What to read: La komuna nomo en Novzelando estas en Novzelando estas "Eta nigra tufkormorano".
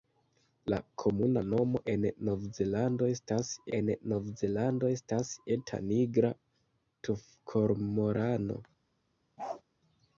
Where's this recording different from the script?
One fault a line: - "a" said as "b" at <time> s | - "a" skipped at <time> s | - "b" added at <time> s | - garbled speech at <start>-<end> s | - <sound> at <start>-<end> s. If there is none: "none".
- bark at 9.4-9.6 s